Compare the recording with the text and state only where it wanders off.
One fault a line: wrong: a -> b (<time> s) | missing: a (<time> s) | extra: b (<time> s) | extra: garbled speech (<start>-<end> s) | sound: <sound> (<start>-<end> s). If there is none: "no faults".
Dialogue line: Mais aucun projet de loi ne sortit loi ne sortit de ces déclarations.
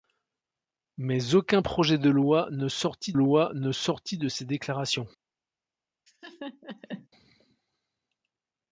sound: laugh (6.1-7.1 s)